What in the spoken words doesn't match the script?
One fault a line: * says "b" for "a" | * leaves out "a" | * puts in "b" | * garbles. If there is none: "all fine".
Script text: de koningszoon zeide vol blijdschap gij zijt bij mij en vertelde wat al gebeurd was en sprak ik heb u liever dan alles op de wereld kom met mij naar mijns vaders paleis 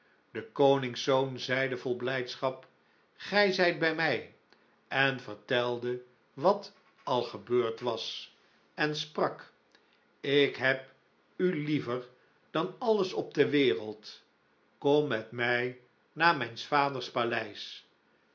all fine